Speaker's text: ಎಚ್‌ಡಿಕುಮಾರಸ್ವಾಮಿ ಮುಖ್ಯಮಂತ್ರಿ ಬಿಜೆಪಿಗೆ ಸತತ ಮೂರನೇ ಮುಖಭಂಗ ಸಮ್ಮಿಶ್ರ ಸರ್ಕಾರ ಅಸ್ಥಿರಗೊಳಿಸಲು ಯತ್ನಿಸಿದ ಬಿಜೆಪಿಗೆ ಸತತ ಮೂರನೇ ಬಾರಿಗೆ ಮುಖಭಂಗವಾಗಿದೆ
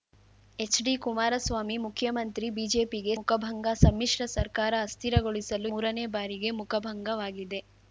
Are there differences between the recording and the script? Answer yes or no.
yes